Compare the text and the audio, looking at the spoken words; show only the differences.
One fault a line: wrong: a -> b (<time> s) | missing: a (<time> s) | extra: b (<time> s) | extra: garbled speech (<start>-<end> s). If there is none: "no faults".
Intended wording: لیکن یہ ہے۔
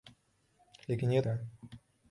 no faults